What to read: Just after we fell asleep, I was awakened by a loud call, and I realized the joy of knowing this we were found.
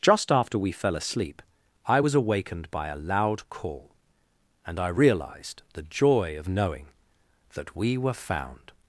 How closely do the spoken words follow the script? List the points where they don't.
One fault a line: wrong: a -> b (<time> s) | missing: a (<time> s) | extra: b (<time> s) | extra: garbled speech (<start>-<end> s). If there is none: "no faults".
wrong: this -> that (7.5 s)